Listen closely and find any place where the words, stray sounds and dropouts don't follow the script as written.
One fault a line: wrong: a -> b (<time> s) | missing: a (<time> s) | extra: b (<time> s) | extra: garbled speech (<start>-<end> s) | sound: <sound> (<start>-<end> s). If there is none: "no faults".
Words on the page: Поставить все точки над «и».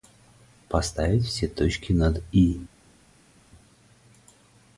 no faults